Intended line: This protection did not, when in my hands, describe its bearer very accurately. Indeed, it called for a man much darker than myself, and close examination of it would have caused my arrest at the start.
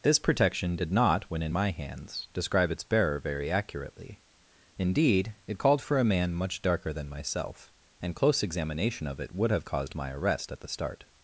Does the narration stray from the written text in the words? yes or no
no